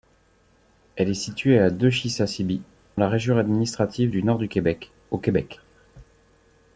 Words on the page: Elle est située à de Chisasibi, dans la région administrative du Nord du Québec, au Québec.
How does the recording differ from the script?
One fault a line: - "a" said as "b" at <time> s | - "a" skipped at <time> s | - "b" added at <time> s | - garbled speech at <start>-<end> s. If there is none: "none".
- "dans" skipped at 2.6 s